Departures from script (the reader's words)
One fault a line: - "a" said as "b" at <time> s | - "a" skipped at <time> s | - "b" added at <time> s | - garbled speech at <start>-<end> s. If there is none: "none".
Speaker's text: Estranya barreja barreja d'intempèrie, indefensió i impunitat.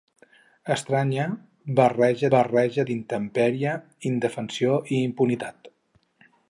none